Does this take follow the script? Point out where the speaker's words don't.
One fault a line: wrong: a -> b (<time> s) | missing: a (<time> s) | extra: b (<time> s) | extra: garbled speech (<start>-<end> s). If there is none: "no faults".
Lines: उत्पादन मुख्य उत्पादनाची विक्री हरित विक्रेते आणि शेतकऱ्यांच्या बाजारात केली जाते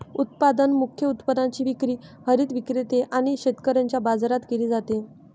no faults